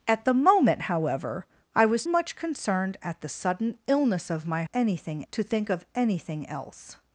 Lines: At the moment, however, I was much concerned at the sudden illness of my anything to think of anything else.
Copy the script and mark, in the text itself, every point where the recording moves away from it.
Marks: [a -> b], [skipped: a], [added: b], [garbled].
At the moment, however, I was much concerned at the sudden illness of my anything to think of anything else.